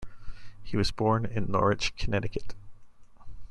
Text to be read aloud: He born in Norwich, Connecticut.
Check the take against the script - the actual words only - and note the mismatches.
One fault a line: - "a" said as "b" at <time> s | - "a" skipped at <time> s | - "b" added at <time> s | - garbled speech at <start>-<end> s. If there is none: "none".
- "was" added at 0.8 s